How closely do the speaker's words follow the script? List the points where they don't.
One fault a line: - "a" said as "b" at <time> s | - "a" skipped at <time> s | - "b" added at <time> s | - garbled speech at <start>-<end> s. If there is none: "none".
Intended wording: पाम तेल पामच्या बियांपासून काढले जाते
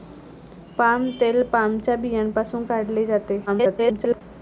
- garbled speech at 3.5-4.2 s